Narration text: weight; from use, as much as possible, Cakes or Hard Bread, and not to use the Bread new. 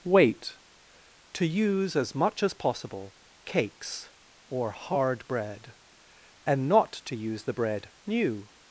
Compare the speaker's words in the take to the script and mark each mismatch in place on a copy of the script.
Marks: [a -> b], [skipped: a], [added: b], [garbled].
weight; [from -> to] use, as much as possible, Cakes or Hard Bread, and not to use the Bread new.